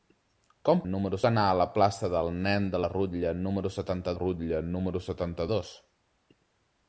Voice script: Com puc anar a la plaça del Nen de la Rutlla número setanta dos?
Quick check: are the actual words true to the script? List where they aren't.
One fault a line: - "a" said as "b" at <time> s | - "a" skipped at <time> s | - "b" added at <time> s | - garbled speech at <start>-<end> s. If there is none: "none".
- "puc" said as "número" at 0.9 s
- "Rutlla número setanta" added at 4.2 s